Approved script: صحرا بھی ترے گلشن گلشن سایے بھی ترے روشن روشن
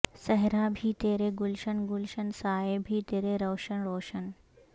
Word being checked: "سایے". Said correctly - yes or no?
yes